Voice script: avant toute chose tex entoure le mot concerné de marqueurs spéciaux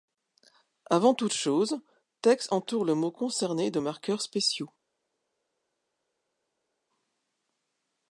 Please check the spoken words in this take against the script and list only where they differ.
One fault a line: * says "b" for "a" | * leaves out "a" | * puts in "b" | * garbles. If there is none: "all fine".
all fine